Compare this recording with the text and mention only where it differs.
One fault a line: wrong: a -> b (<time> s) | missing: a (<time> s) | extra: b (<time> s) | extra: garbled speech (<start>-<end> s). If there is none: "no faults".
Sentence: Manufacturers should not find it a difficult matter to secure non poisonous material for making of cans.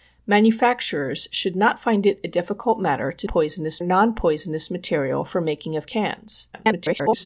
wrong: secure -> poisonous (3.3 s)
extra: garbled speech (6.5-7.3 s)